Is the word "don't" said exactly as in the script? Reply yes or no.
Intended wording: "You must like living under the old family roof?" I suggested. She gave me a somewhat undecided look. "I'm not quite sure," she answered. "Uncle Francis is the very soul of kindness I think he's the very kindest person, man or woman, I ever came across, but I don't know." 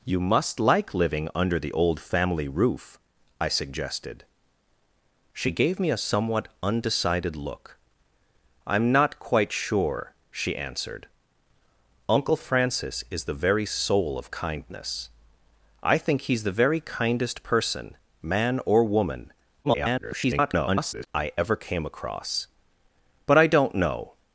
yes